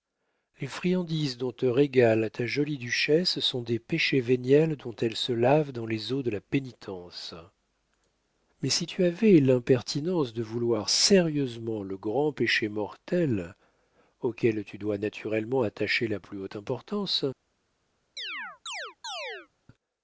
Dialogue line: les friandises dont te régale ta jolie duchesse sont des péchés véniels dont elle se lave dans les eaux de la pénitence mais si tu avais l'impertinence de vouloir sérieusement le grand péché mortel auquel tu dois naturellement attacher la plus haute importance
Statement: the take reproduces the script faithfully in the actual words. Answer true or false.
true